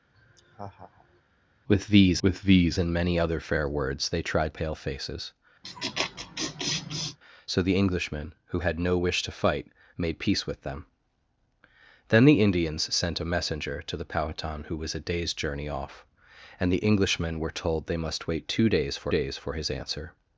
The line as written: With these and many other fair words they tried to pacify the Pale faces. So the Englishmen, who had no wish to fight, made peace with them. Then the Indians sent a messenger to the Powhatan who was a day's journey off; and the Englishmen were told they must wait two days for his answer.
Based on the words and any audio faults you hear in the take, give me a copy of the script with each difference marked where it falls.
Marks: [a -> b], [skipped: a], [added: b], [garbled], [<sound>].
[laugh] With these [added: with these] and many other fair words they tried [skipped: to pacify the] Pale faces. [laugh] So the Englishmen, who had no wish to fight, made peace with them. Then the Indians sent a messenger to the Powhatan who was a day's journey off; and the Englishmen were told they must wait two days for [added: days for] his answer.